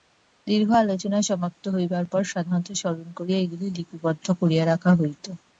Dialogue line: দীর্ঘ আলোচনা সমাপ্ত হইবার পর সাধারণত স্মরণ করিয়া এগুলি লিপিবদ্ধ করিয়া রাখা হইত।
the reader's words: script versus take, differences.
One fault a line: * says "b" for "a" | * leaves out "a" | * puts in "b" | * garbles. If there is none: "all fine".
all fine